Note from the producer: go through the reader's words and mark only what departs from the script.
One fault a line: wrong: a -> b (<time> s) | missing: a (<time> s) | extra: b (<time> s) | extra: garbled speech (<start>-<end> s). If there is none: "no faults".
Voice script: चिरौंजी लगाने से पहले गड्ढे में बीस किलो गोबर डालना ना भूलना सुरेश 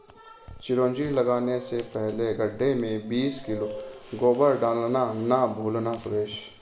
no faults